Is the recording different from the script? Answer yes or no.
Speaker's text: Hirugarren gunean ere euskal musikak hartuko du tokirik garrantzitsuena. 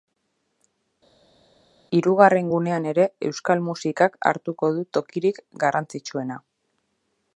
no